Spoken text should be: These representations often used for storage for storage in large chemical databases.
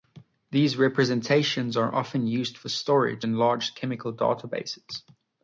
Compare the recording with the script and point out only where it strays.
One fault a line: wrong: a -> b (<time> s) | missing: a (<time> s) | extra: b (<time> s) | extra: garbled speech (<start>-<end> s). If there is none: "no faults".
extra: are (1.8 s)
missing: for storage (3.3 s)